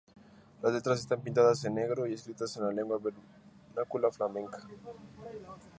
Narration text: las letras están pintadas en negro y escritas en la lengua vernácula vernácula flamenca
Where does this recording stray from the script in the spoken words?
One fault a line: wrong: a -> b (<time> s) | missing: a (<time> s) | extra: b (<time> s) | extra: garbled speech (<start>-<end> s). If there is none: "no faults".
missing: vernácula (4.1 s)